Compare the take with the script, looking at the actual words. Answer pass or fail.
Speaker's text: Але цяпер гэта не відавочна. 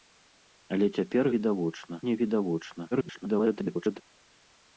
fail